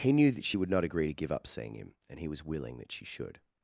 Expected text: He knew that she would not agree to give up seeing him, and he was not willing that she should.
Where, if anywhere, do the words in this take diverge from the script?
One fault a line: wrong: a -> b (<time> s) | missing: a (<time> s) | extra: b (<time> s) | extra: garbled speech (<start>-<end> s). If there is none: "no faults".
missing: not (2.4 s)